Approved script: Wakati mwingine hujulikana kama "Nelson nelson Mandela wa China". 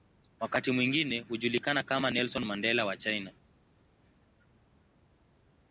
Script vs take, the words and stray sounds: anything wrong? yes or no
yes